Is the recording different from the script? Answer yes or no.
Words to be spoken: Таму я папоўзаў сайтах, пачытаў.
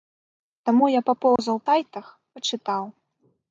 no